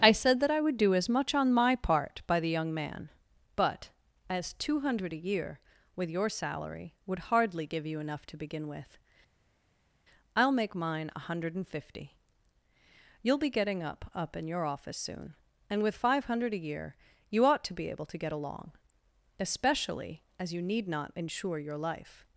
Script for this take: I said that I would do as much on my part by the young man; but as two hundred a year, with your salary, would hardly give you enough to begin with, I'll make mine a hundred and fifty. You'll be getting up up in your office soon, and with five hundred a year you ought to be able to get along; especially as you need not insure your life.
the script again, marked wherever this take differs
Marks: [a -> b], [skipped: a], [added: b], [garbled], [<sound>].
I said that I would do as much on my part by the young man; but as two hundred a year, with your salary, would hardly give you enough to begin with, I'll make mine a hundred and fifty. You'll be getting up up in your office soon, and with five hundred a year you ought to be able to get along; especially as you need not insure your life.